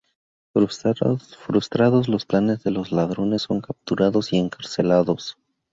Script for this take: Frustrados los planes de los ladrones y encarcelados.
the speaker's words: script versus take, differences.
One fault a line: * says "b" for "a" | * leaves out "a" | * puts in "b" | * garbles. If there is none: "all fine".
* puts in "son capturados"